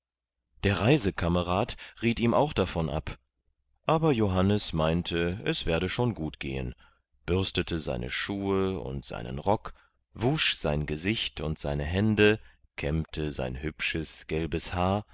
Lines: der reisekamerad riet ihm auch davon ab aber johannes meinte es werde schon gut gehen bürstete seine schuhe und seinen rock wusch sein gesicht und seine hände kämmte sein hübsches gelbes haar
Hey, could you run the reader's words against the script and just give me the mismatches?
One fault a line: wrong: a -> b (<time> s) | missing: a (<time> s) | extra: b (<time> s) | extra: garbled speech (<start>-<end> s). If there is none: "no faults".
no faults